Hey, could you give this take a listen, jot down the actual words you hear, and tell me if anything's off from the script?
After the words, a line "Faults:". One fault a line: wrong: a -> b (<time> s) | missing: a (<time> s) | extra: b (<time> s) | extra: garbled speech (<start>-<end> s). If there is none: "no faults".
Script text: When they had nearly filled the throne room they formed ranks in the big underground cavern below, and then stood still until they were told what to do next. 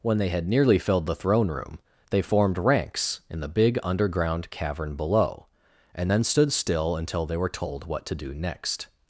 When they had nearly filled the throne room they formed ranks in the big underground cavern below, and then stood still until they were told what to do next.
Faults:
no faults